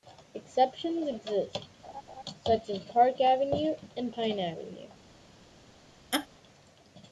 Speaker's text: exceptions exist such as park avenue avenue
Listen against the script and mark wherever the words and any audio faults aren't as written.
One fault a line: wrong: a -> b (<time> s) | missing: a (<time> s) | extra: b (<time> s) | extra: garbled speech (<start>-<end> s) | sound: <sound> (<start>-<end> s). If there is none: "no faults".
sound: laugh (1.8-2.2 s)
extra: and pine (4.0 s)
sound: laugh (6.1-6.3 s)